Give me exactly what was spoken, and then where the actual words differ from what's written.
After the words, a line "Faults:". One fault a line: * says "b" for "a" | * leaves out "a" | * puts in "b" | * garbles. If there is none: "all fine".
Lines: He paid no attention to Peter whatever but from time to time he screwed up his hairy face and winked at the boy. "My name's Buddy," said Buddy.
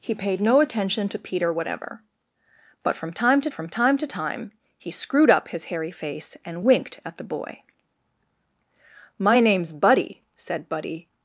He paid no attention to Peter whatever but from time to from time to time he screwed up his hairy face and winked at the boy. "My name's Buddy," said Buddy.
Faults:
* puts in "from time to"